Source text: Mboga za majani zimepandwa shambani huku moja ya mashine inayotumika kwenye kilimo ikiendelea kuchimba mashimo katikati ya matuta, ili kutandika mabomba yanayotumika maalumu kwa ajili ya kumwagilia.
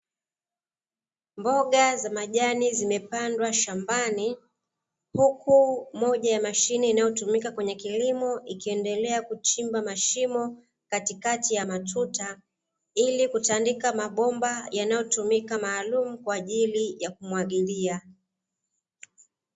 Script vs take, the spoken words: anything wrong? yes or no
no